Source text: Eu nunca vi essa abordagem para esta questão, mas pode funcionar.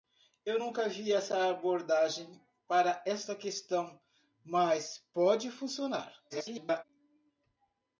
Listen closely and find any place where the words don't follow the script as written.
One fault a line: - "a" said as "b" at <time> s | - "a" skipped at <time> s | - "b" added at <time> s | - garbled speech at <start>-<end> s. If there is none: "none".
- garbled speech at 6.3-6.8 s